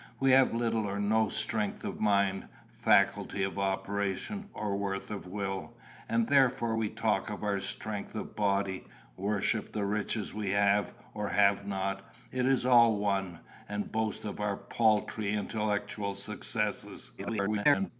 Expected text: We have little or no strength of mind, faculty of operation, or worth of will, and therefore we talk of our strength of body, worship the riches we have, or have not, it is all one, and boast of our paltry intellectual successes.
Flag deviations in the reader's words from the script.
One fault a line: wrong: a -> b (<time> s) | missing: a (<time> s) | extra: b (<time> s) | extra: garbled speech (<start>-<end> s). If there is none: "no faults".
extra: garbled speech (17.2-17.9 s)